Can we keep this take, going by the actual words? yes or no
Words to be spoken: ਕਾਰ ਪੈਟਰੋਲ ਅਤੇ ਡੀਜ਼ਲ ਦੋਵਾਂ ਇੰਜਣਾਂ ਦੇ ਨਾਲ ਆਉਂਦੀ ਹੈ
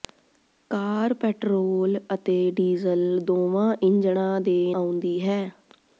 no